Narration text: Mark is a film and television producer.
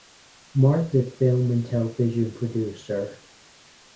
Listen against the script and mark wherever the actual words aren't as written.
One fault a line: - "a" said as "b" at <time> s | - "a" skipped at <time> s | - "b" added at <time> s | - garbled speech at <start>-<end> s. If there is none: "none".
- "is" skipped at 0.9 s